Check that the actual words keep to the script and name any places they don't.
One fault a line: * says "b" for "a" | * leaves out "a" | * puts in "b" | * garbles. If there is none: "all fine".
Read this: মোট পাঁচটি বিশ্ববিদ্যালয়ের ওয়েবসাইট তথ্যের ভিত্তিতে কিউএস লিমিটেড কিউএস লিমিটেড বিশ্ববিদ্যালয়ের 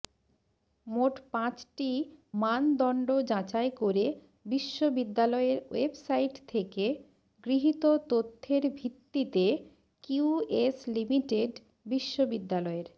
* puts in "মানদণ্ড যাচাই করে"
* puts in "থেকে গৃহীত"
* leaves out "কিউএস লিমিটেড"